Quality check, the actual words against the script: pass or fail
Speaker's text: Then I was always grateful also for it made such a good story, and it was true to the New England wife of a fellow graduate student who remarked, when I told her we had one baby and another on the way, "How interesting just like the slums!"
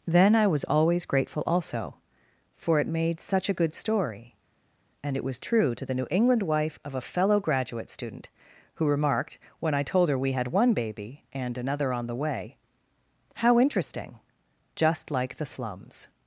pass